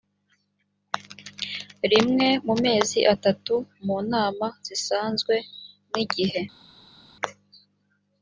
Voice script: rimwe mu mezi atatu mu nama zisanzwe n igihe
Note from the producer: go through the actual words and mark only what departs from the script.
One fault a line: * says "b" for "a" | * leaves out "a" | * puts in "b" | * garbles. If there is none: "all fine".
all fine